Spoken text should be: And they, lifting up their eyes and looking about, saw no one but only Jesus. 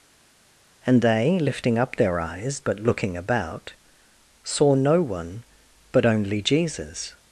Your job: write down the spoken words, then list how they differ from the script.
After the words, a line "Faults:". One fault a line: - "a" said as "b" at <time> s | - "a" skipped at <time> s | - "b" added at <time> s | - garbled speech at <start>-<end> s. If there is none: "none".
And they, lifting up their eyes but looking about, saw no one but only Jesus.
Faults:
- "and" said as "but" at 2.6 s